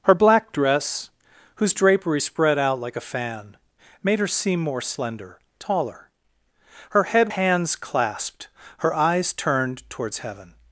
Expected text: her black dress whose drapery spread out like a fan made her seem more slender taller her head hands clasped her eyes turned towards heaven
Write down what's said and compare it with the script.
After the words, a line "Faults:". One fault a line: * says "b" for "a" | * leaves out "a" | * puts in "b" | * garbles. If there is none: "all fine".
her black dress whose drapery spread out like a fan made her seem more slender taller her head hands clasped her eyes turned towards heaven
Faults:
all fine